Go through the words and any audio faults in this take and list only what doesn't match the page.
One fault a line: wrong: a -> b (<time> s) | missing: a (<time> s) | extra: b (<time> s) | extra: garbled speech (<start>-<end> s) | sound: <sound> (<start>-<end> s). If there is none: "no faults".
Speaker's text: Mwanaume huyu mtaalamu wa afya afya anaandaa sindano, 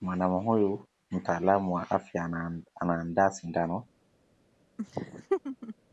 missing: afya (2.3 s)
sound: laugh (4.8-5.7 s)